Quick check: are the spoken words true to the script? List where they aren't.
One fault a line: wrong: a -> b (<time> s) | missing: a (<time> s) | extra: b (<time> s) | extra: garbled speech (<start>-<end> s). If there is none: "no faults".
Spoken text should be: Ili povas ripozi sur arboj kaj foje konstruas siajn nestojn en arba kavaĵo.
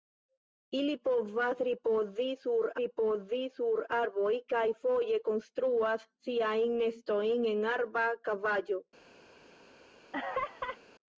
extra: ripozi sur (2.8 s)